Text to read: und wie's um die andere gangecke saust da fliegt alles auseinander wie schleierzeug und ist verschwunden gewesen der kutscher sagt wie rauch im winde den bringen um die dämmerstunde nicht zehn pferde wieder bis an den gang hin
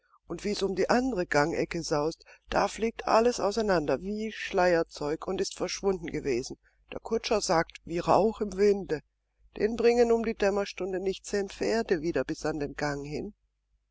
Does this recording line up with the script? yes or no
yes